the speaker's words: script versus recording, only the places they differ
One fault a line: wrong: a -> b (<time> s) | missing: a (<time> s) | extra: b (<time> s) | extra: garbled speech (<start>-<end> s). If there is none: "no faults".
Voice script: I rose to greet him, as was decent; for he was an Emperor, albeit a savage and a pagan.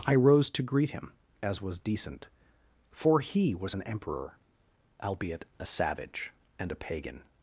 no faults